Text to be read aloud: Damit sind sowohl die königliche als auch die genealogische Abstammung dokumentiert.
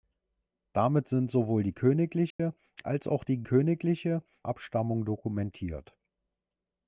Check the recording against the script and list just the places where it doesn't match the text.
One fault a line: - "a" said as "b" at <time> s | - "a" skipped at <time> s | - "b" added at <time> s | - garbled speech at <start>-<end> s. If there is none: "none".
- "genealogische" said as "königliche" at 3.4 s